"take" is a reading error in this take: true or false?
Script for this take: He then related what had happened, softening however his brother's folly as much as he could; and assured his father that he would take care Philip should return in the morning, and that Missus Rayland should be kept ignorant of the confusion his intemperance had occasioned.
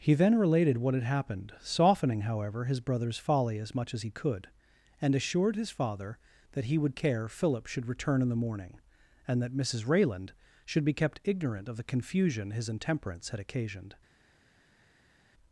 true